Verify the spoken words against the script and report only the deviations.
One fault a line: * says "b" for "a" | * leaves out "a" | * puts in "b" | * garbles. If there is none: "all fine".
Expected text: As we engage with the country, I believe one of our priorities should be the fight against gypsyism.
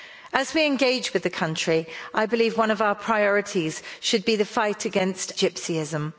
all fine